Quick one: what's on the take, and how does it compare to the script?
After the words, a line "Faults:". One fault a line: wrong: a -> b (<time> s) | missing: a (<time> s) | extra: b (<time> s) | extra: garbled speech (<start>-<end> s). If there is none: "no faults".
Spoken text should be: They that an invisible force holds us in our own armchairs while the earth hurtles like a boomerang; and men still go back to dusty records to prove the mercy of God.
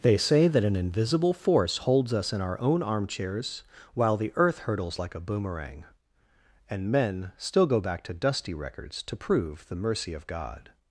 They say that an invisible force holds us in our own armchairs while the earth hurtles like a boomerang; and men still go back to dusty records to prove the mercy of God.
Faults:
extra: say (0.2 s)